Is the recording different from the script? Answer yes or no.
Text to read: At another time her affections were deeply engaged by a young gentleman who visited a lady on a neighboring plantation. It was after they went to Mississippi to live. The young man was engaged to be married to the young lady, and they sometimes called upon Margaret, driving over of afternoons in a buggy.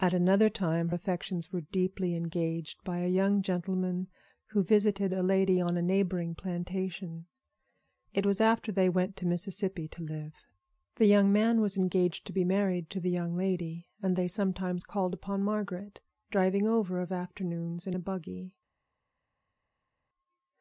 yes